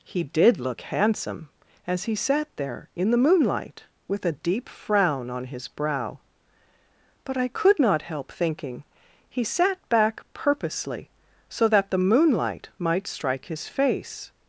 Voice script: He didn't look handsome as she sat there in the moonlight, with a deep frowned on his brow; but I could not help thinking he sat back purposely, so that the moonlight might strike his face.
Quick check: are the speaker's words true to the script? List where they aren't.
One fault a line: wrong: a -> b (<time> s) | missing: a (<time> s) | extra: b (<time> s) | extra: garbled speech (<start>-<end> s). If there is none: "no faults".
wrong: didn't -> did (0.2 s)
wrong: she -> he (2.0 s)
wrong: frowned -> frown (4.7 s)